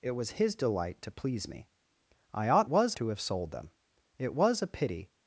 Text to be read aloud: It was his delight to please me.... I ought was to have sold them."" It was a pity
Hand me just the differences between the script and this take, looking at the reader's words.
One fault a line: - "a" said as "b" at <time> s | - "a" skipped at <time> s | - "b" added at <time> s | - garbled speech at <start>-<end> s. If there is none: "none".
none